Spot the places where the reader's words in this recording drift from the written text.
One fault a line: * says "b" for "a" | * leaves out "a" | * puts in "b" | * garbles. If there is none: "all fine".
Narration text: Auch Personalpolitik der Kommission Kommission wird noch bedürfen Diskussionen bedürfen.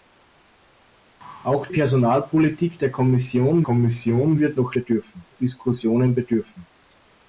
all fine